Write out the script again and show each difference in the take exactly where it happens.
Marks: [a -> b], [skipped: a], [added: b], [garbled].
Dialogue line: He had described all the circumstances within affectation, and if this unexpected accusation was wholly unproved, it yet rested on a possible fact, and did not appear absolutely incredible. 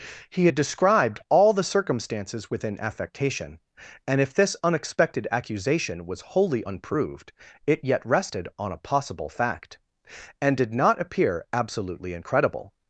He had described all the circumstances within affectation, and if this unexpected accusation was wholly unproved, it yet rested on a possible fact, and did not appear absolutely incredible.